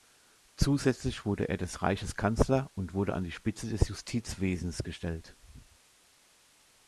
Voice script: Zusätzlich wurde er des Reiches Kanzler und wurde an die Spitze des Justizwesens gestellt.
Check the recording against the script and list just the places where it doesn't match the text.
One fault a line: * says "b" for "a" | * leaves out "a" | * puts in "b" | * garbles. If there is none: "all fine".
all fine